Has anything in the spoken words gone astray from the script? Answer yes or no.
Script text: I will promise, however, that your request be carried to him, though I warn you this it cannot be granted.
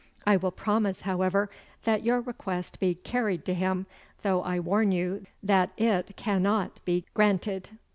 yes